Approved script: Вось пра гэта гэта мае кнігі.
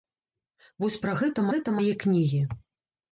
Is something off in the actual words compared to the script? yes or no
no